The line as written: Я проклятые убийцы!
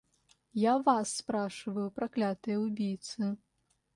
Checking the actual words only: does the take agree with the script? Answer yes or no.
no